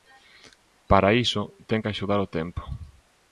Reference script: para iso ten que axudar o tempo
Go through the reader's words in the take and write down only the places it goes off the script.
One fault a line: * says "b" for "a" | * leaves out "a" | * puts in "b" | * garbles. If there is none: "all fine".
all fine